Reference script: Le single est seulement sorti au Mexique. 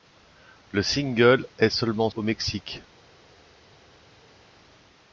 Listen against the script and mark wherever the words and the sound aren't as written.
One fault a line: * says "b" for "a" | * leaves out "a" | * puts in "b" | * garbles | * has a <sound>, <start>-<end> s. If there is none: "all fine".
* leaves out "sorti"